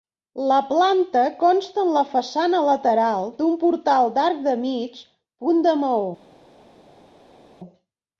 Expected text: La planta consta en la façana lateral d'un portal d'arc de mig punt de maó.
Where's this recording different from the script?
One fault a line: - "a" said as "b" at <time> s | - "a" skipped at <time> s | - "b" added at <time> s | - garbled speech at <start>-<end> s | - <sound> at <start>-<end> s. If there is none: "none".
none